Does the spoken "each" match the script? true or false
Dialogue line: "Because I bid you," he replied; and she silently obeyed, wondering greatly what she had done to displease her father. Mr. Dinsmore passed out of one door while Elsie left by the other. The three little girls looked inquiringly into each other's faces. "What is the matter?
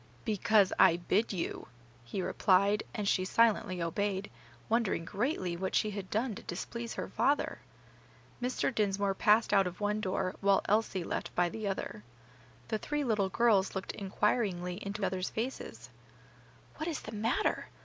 false